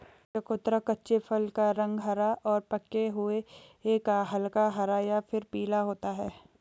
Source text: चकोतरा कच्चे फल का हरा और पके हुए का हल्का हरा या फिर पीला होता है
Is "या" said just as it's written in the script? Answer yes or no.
yes